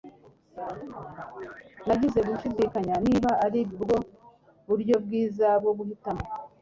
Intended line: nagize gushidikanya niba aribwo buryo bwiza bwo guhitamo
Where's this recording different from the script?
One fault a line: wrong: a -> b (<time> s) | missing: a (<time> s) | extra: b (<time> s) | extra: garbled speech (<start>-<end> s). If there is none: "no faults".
no faults